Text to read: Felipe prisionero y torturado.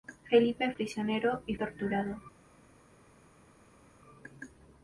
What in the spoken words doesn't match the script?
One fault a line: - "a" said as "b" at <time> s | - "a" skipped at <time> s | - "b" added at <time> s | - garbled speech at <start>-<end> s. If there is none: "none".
none